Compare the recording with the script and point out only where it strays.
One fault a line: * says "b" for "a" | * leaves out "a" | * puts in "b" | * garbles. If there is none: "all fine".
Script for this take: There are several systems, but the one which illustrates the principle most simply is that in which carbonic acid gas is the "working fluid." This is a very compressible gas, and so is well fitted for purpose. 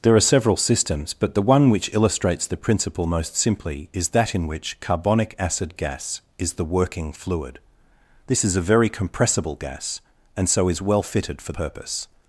all fine